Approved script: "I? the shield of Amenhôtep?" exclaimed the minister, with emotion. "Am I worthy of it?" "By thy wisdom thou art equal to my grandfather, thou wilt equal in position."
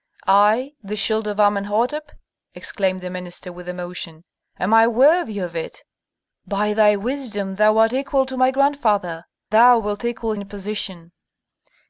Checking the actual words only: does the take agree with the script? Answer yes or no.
yes